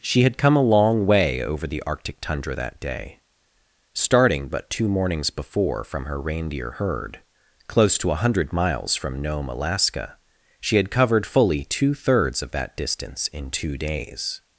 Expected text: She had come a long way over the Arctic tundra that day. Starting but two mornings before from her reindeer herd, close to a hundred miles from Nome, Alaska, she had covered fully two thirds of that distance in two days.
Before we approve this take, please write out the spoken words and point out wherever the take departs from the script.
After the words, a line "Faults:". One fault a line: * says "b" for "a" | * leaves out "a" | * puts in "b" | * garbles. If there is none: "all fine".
She had come a long way over the Arctic tundra that day. Starting but two mornings before from her reindeer herd, close to a hundred miles from Nome, Alaska, she had covered fully two thirds of that distance in two days.
Faults:
all fine